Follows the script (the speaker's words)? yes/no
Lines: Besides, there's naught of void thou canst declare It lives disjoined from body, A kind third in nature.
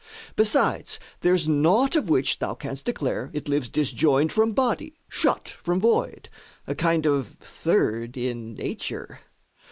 no